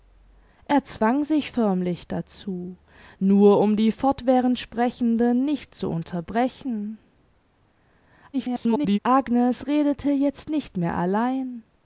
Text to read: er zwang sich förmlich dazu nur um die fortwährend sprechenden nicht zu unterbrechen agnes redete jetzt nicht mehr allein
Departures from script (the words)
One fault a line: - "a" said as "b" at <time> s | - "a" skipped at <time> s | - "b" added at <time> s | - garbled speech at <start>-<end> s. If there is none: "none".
- garbled speech at 8.3-9.0 s